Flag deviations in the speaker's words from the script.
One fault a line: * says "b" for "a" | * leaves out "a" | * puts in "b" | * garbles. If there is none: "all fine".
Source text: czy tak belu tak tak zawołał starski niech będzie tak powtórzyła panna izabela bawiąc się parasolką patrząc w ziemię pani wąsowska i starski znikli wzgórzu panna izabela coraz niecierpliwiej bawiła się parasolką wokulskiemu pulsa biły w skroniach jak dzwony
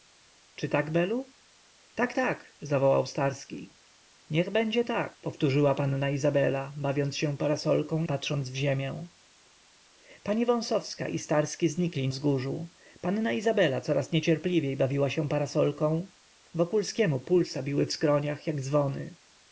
all fine